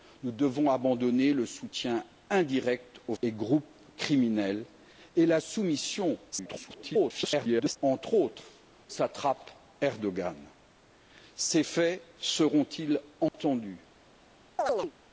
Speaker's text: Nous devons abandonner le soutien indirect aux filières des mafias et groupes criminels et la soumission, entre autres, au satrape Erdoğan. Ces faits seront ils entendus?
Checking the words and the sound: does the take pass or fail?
fail